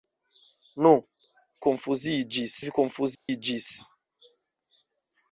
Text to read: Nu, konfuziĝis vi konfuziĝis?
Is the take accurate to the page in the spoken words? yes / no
yes